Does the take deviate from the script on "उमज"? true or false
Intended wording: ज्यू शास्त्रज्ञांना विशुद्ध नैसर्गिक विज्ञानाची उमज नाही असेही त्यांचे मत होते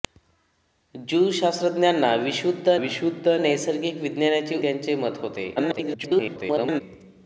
true